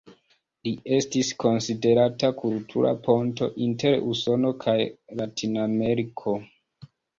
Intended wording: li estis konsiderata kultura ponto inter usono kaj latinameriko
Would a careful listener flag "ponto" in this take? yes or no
no